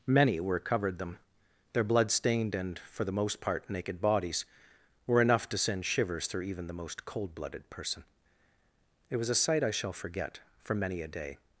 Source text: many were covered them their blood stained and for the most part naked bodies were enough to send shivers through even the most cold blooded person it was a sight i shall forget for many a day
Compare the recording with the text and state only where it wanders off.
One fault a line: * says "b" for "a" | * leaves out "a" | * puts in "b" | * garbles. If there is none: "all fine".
all fine